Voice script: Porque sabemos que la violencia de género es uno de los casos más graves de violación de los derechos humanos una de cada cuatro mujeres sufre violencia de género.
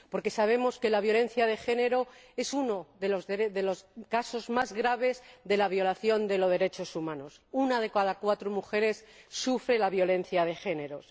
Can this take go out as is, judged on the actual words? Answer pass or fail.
pass